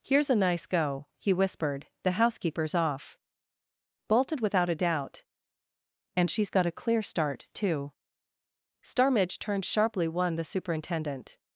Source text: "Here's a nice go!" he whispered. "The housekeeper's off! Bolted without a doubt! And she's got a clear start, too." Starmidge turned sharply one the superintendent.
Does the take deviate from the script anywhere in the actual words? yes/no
no